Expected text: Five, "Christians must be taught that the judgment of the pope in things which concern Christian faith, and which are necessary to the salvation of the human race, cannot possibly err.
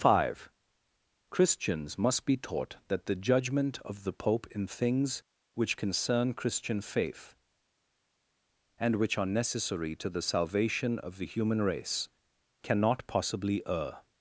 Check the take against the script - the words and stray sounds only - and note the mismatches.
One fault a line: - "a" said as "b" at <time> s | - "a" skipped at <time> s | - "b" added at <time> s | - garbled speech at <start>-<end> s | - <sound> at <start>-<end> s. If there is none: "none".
none